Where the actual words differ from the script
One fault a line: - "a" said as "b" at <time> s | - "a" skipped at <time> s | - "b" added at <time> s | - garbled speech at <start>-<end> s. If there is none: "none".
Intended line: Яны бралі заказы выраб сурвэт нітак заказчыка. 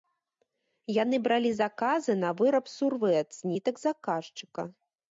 - "на" added at 2.2 s
- "з" added at 3.4 s